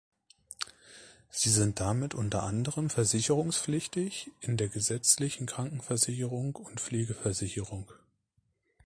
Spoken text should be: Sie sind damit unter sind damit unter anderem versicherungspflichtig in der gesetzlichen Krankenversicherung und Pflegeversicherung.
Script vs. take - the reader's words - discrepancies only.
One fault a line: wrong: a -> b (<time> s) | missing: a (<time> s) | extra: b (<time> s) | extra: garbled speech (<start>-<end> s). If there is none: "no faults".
missing: sind damit unter (2.4 s)